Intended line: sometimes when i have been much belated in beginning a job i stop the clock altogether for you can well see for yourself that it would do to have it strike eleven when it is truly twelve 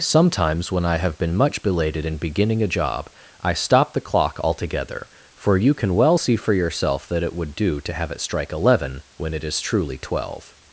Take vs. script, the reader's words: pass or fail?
pass